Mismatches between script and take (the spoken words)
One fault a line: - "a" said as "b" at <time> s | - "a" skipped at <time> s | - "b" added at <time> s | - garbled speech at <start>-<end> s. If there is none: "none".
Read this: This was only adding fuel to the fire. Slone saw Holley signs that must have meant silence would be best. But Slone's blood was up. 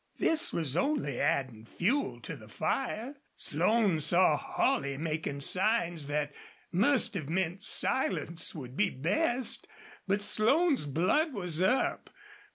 - "making" added at 5.0 s